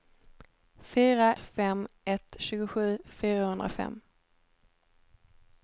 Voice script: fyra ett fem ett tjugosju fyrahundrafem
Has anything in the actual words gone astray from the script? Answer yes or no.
yes